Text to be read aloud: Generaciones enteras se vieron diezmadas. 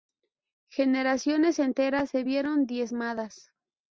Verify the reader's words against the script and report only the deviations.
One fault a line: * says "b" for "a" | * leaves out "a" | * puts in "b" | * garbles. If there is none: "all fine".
all fine